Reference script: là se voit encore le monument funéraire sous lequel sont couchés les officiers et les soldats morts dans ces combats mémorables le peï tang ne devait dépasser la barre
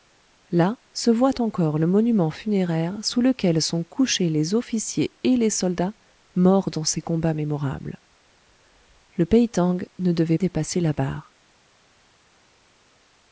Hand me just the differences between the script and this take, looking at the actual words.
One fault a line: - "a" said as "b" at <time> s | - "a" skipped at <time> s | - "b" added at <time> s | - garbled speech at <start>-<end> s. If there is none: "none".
none